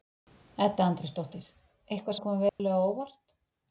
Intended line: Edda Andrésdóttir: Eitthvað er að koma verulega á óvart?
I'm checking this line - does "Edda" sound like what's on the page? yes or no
yes